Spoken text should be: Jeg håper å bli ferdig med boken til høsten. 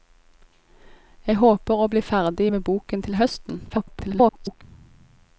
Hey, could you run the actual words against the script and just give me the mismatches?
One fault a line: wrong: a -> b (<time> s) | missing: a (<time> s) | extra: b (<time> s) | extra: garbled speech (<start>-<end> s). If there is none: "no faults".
extra: garbled speech (3.7-4.6 s)